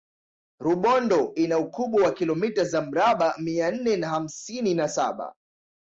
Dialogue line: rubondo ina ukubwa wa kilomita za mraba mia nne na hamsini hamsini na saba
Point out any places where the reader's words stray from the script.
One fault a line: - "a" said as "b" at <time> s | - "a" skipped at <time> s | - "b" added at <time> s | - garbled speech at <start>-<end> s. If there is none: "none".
- "hamsini" skipped at 4.7 s